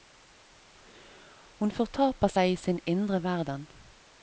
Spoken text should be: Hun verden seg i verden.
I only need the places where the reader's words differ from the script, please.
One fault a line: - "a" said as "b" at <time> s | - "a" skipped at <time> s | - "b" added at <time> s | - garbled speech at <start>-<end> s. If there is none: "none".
- "verden" said as "fortaper" at 1.7 s
- "sin indre" added at 2.6 s